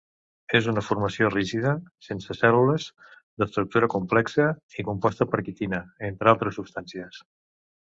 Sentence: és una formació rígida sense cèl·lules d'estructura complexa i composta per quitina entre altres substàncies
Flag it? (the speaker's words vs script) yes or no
no